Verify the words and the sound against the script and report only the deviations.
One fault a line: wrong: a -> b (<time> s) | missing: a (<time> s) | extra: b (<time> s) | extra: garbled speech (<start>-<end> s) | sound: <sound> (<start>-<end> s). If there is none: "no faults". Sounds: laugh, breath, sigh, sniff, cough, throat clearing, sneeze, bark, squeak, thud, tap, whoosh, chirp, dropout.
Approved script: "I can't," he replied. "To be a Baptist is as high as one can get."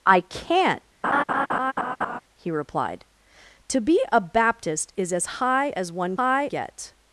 sound: laugh (1.0-2.2 s)
wrong: can -> high (6.2 s)